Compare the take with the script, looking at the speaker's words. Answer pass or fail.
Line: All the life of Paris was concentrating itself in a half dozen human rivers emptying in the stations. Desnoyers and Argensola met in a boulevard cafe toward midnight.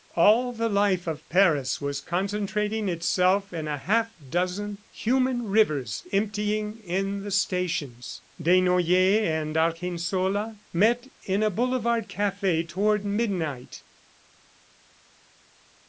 pass